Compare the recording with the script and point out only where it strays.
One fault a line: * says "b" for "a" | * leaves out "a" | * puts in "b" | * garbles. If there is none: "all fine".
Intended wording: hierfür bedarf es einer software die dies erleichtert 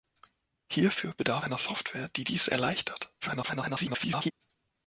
* leaves out "es"
* garbles